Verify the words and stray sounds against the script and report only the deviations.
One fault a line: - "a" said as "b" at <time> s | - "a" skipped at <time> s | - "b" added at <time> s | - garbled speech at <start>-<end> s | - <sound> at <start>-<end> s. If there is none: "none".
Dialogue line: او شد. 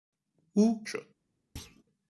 - thud at 1.6-1.8 s